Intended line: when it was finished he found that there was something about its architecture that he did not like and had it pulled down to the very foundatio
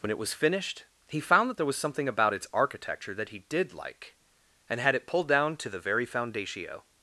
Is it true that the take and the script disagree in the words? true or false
true